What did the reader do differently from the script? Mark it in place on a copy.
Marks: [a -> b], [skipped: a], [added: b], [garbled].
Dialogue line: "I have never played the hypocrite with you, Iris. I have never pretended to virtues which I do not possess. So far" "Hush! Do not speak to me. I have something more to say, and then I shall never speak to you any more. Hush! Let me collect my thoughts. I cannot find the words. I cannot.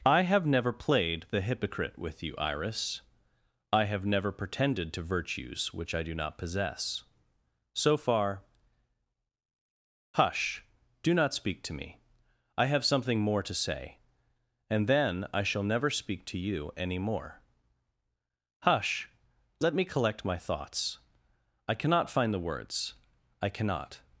"I have never played the hypocrite with you, Iris. I have never pretended to virtues which I do not possess. So far" "Hush! Do not speak to me. I have something more to say, and then I shall never speak to you any more. Hush! Let me collect my thoughts. I cannot find the words. I cannot.